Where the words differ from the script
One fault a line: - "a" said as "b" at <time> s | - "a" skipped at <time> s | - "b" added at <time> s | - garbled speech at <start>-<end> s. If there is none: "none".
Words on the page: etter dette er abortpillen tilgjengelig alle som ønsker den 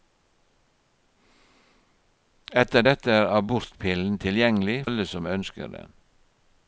none